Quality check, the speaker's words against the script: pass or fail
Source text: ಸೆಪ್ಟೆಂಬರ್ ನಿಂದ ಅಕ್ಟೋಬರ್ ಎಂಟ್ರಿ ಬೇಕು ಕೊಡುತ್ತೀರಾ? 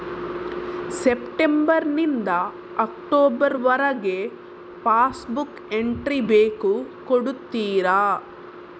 fail